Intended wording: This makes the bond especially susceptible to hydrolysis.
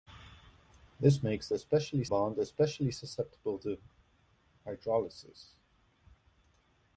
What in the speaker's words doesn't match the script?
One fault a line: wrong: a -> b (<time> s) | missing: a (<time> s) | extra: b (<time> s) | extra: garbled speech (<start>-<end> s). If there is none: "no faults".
wrong: the -> especially (1.5 s)